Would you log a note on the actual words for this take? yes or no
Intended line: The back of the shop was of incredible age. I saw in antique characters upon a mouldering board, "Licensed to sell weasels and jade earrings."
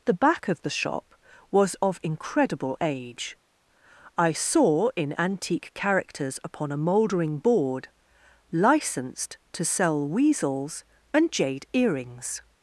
no